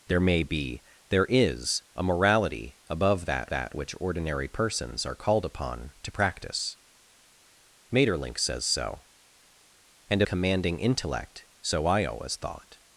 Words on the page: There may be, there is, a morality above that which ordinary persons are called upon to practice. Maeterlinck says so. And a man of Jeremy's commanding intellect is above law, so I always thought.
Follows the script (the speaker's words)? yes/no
no